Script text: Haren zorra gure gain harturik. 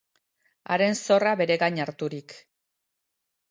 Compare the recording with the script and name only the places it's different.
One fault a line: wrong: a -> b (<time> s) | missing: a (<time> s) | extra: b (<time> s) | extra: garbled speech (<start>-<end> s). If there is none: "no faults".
wrong: gure -> bere (1.4 s)